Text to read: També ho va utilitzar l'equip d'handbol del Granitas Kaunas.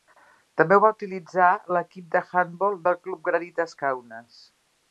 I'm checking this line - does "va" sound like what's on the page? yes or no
yes